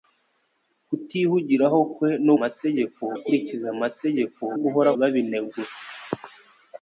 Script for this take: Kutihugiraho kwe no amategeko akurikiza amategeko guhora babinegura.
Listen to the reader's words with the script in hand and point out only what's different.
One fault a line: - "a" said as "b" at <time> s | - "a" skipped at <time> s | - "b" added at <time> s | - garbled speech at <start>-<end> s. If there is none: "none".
none